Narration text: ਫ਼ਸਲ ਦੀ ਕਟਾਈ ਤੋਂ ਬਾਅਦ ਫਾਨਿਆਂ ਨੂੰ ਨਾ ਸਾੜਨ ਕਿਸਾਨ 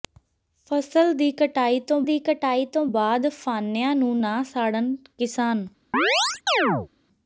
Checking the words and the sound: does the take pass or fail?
fail